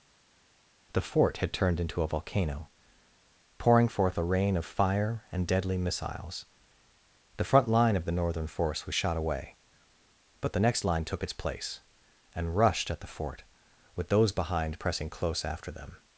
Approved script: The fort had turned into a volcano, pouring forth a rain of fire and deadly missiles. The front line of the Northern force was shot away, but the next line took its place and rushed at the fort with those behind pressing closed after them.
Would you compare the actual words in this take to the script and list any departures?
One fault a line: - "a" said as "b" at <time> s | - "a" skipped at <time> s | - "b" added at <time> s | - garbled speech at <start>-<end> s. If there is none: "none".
- "closed" said as "close" at 15.1 s